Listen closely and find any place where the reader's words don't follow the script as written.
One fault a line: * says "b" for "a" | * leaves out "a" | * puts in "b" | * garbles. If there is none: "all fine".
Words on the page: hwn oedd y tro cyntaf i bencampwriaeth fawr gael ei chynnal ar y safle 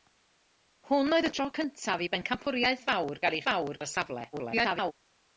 * says "fawr" for "chynnal"
* garbles